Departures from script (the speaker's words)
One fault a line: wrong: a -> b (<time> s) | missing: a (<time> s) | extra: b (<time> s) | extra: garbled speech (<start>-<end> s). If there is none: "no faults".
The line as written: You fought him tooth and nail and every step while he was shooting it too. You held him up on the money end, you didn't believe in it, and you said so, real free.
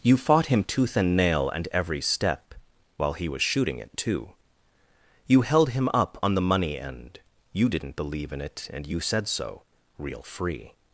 no faults